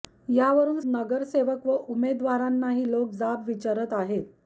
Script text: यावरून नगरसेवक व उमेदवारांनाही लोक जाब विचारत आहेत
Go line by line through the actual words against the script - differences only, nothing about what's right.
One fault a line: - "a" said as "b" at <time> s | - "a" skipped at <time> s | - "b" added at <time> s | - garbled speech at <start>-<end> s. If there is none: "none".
none